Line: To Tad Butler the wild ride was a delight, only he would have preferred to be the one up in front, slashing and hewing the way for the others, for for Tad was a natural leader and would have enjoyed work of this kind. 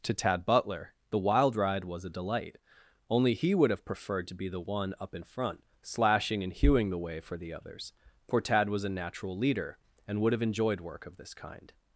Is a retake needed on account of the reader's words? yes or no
yes